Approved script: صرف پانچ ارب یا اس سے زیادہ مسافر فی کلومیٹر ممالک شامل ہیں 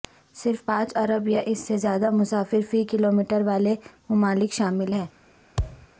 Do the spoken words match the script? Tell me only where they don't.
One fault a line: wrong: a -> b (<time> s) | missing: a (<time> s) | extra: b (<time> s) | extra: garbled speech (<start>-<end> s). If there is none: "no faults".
extra: والے (3.4 s)